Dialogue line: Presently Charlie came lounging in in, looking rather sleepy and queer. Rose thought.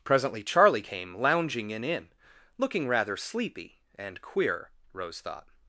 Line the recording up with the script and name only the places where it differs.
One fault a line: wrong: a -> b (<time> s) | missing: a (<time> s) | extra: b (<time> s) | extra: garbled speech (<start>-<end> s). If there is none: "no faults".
no faults